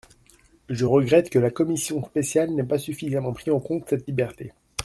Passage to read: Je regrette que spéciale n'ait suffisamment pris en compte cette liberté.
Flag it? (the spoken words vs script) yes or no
yes